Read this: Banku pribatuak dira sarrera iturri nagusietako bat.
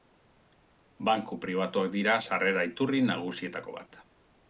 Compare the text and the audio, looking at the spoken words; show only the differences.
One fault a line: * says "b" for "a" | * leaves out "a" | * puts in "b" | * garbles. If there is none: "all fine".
all fine